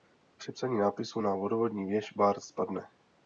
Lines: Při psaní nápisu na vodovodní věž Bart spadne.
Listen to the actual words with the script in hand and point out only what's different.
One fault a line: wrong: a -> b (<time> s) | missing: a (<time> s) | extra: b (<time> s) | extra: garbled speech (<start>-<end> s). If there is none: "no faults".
no faults